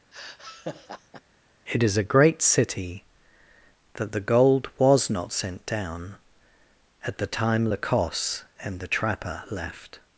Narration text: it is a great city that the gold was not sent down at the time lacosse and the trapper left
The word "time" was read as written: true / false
true